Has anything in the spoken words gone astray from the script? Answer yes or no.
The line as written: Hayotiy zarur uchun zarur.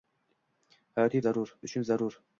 no